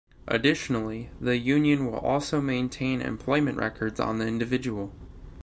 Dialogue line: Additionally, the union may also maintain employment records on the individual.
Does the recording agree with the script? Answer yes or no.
no